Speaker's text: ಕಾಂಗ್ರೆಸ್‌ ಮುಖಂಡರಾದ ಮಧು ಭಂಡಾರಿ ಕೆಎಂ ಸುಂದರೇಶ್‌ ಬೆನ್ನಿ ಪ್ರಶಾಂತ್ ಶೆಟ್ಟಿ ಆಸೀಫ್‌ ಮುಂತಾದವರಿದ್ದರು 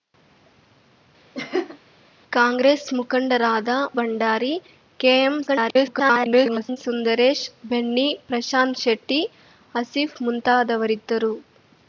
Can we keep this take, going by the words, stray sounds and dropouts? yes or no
no